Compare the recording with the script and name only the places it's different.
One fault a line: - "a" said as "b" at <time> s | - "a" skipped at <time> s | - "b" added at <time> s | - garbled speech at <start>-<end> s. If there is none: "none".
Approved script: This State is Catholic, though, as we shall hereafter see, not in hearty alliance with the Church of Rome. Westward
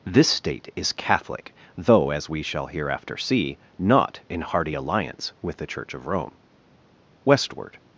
none